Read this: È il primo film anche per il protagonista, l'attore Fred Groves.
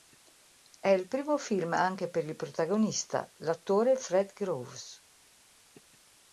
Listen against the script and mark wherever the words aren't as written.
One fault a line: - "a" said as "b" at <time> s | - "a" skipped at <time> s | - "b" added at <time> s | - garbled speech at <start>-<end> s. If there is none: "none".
none